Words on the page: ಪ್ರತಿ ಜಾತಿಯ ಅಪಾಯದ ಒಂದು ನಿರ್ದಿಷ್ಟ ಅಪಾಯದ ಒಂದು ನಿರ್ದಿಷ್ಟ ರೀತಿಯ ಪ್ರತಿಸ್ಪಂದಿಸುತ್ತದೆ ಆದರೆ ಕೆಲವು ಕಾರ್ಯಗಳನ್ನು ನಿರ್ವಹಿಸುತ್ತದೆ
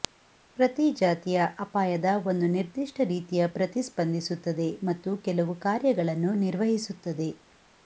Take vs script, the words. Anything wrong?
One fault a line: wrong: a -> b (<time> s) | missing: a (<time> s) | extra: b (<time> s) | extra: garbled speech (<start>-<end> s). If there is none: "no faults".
missing: ಅಪಾಯದ ಒಂದು ನಿರ್ದಿಷ್ಟ (3.0 s)
wrong: ಆದರೆ -> ಮತ್ತು (4.8 s)